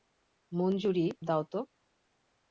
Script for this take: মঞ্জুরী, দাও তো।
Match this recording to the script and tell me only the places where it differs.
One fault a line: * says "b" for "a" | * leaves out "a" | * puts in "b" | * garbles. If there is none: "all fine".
all fine